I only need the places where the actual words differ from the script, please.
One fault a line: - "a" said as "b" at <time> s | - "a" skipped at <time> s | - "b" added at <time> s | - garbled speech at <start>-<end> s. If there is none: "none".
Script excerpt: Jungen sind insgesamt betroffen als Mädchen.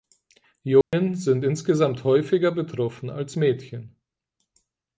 - "häufiger" added at 2.0 s